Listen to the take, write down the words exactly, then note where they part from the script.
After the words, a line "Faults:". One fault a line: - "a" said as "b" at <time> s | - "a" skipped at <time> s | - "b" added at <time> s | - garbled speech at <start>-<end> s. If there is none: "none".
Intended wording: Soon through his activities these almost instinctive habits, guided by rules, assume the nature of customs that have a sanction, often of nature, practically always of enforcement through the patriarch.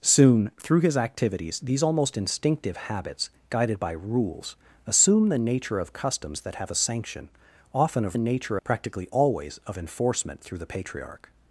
Soon through his activities these almost instinctive habits, guided by rules, assume the nature of customs that have a sanction, often of nature, practically always of enforcement through the patriarch.
Faults:
none